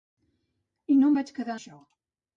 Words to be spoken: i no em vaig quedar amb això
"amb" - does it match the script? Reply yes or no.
no